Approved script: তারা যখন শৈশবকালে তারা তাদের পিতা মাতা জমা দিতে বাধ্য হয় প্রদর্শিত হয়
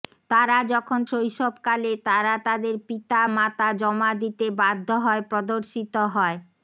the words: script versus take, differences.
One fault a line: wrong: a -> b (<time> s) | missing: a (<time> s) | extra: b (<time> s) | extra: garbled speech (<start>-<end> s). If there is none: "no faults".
no faults